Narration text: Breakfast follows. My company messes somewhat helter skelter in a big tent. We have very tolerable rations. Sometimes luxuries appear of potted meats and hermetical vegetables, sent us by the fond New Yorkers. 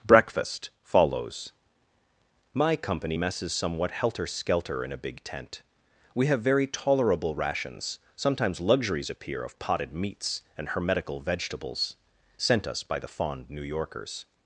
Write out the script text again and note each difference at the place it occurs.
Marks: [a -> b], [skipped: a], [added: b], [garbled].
Breakfast follows. My company messes somewhat helter skelter in a big tent. We have very tolerable rations. Sometimes luxuries appear of potted meats and hermetical vegetables, sent us by the fond New Yorkers.